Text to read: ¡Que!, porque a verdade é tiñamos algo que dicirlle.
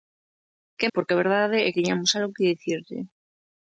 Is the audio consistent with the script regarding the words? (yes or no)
yes